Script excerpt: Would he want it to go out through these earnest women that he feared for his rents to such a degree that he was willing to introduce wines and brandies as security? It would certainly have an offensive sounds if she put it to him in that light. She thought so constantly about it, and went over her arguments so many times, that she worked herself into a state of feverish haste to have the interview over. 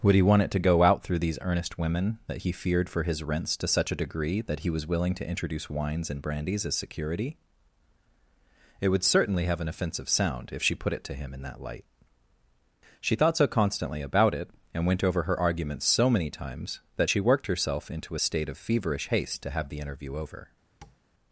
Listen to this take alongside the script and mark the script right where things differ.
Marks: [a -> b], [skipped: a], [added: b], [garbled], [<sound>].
Would he want it to go out through these earnest women that he feared for his rents to such a degree that he was willing to introduce wines and brandies as security? It would certainly have an offensive [sounds -> sound] if she put it to him in that light. She thought so constantly about it, and went over her arguments so many times, that she worked herself into a state of feverish haste to have the interview over. [tap]